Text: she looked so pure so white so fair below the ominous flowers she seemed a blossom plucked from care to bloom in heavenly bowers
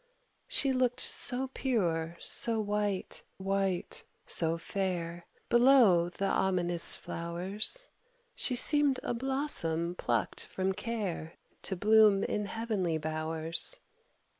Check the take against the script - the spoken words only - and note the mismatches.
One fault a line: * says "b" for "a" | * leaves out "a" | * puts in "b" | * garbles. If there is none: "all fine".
* puts in "white"